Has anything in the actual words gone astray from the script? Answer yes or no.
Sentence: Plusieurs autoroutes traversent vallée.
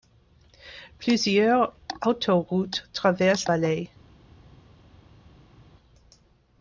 no